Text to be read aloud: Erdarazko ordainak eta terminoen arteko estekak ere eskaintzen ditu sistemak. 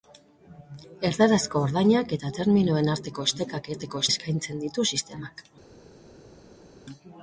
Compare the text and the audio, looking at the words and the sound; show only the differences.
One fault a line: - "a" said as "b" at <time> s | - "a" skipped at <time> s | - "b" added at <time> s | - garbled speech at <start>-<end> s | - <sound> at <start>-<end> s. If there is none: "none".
- "ere" said as "arteko" at 3.7 s